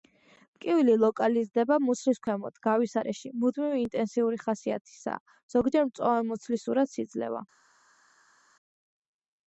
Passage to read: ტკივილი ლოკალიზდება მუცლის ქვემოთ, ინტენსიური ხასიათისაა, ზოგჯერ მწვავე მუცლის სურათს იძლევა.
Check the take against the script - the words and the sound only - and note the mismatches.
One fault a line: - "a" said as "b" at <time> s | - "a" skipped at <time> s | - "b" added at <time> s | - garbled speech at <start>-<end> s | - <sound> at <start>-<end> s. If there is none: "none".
- "გავის არეში მუდმივი" added at 2.7 s